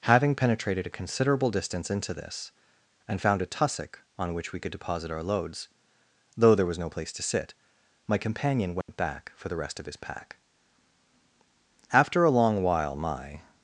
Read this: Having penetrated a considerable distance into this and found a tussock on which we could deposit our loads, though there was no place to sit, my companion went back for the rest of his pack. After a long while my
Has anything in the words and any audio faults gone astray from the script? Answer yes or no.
yes